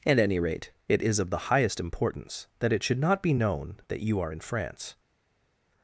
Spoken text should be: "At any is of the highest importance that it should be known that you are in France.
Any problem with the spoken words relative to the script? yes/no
yes